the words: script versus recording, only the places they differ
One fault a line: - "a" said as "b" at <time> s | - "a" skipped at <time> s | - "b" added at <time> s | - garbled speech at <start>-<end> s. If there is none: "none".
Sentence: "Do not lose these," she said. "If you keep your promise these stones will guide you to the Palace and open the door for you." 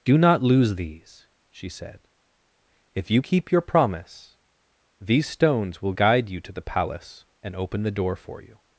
none